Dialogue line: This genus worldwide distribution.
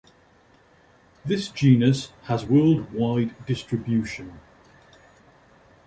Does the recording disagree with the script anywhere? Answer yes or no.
yes